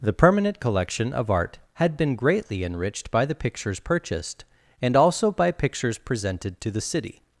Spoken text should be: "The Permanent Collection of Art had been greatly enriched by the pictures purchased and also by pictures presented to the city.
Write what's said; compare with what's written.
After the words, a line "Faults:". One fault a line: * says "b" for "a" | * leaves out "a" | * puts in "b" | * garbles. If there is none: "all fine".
"The Permanent Collection of Art had been greatly enriched by the pictures purchased and also by pictures presented to the city.
Faults:
all fine